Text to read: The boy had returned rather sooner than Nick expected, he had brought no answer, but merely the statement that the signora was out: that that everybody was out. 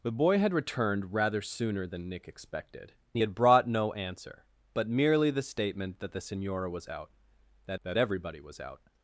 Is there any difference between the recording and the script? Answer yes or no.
no